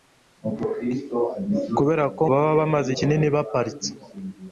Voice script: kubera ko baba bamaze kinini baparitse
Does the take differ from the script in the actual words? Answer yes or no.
no